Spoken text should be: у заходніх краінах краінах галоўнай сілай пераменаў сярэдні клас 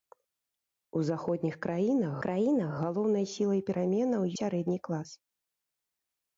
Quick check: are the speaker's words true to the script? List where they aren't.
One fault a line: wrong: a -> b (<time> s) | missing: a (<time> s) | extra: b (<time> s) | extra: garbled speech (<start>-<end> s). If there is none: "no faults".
no faults